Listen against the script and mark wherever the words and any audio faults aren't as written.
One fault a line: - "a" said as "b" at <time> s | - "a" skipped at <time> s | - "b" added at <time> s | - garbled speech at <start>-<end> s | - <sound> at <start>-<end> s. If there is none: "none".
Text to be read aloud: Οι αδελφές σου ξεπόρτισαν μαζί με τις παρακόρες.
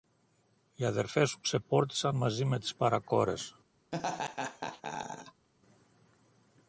- laugh at 3.9-5.5 s